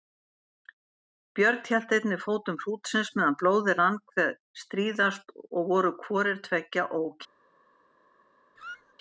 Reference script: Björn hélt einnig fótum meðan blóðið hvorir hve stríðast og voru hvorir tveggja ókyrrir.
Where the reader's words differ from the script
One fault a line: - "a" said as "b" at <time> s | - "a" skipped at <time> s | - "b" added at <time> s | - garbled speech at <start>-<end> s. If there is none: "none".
- "hrútsins" added at 2.6 s
- "hvorir" said as "rann" at 3.8 s